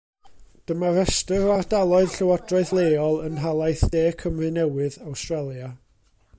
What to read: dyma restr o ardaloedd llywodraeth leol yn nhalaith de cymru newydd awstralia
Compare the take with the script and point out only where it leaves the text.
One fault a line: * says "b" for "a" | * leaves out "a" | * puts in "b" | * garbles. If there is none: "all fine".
all fine